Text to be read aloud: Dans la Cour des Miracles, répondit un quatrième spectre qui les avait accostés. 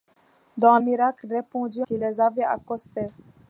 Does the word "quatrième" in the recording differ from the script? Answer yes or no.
yes